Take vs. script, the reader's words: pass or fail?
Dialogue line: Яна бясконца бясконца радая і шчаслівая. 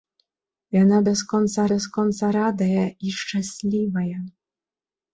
pass